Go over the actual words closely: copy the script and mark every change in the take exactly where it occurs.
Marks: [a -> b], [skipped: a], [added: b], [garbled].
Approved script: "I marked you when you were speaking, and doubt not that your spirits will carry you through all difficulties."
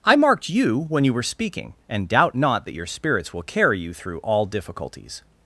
"I marked you when you were speaking, and doubt not that your spirits will carry you through all difficulties."